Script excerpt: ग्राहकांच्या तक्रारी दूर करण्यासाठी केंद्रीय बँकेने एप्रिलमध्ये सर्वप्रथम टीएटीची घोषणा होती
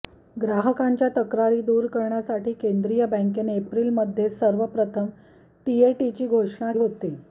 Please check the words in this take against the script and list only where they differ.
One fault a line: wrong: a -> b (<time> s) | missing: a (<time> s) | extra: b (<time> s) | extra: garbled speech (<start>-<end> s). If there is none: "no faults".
no faults